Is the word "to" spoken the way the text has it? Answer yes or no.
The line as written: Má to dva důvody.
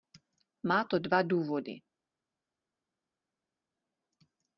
yes